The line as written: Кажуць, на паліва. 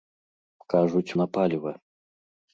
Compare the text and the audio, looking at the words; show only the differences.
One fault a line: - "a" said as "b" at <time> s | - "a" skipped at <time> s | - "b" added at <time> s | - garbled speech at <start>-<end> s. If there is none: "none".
none